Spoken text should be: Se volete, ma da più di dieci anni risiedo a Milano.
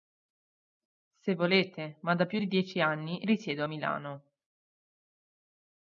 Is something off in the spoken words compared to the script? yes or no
no